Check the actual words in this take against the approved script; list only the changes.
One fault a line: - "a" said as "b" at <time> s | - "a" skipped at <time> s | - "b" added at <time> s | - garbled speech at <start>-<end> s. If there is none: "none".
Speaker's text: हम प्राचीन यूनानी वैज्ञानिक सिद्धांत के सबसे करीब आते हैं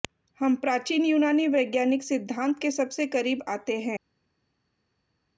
none